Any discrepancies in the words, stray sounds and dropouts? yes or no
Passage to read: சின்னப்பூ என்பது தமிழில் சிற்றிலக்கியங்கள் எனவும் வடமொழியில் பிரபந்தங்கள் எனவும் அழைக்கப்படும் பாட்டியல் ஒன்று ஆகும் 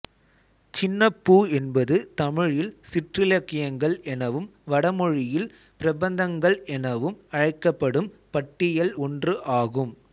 no